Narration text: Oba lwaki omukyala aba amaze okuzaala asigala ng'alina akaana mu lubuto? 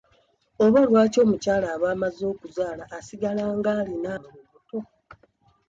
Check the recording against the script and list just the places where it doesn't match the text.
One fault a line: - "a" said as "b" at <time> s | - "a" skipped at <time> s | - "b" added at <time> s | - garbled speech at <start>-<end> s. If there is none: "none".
- "akaana" skipped at 4.1 s